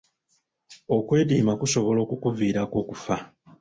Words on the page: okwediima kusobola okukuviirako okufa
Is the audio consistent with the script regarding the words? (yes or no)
yes